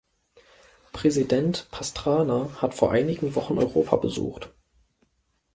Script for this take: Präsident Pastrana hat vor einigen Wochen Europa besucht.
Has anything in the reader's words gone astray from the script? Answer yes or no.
no